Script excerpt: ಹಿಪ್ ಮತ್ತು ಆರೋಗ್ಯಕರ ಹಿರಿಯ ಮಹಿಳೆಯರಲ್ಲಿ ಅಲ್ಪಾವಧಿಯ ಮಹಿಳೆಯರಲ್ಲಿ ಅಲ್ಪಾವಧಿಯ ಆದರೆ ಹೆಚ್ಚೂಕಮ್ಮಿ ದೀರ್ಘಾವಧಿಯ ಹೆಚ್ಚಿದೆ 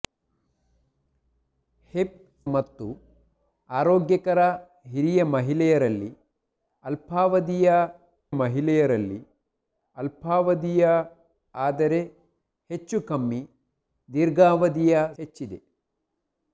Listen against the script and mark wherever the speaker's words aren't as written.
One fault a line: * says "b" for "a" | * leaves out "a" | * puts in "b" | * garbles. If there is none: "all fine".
all fine